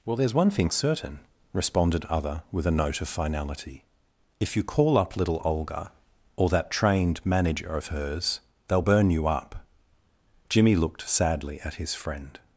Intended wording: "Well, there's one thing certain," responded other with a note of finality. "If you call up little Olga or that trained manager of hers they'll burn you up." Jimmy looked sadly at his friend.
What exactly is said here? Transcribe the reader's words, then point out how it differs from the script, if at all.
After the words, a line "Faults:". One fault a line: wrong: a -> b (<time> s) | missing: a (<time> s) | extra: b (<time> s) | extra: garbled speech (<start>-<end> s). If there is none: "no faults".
"Well, there's one thing certain," responded other with a note of finality. "If you call up little Olga or that trained manager of hers they'll burn you up." Jimmy looked sadly at his friend.
Faults:
no faults